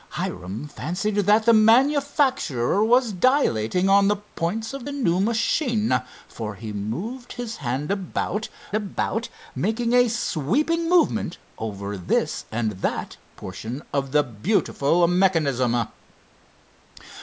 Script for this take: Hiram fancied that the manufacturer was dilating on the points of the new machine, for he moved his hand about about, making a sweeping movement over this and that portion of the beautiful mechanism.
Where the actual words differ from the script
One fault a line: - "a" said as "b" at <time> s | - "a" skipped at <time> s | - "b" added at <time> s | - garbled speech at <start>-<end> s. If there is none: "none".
none